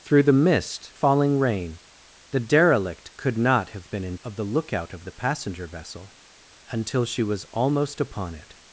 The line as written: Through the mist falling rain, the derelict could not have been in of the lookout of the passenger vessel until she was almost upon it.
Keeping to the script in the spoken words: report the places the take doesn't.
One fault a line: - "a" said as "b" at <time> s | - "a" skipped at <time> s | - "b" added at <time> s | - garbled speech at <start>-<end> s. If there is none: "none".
none